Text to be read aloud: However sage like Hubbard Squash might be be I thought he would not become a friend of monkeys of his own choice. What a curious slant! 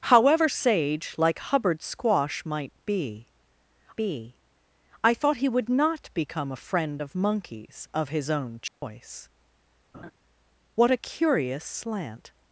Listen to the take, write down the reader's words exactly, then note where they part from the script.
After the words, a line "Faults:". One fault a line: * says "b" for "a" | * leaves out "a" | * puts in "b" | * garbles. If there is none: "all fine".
However sage like Hubbard Squash might be be I thought he would not become a friend of monkeys of his own choice. What a curious slant!
Faults:
all fine